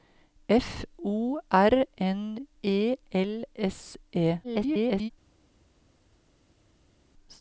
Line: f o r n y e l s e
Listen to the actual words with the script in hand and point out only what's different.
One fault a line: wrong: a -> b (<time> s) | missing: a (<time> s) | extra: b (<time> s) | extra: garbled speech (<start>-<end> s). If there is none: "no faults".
missing: y (2.5 s)
extra: garbled speech (4.4-5.1 s)